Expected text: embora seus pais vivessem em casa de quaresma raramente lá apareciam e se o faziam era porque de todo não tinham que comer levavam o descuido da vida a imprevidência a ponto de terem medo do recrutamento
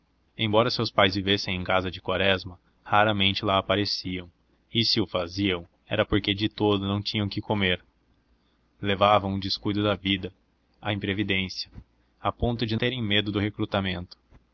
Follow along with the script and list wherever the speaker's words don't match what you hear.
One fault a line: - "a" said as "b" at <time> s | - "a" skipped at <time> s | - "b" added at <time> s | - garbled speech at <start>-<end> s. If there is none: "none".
none